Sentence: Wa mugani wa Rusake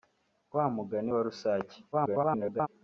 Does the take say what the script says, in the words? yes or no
no